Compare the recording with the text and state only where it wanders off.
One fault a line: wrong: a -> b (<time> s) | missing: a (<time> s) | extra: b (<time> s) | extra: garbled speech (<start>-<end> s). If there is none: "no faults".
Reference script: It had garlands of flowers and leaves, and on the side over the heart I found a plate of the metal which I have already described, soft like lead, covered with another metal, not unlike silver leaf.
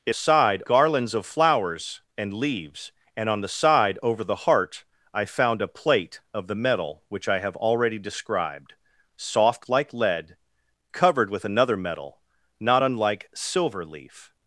wrong: had -> side (0.1 s)